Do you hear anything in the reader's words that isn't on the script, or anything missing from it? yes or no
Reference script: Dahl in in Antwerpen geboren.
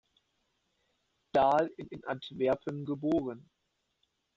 no